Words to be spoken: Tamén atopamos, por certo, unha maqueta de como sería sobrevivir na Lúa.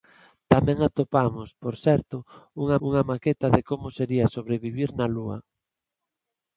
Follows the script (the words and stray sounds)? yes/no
no